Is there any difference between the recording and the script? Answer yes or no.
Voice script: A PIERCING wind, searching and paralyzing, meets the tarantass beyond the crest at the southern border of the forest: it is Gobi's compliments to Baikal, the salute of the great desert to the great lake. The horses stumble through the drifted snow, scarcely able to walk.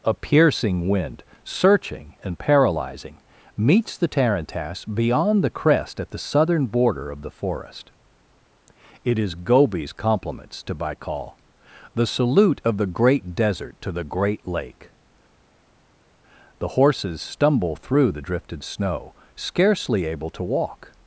no